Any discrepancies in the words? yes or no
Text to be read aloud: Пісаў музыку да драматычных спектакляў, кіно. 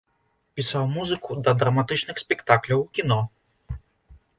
no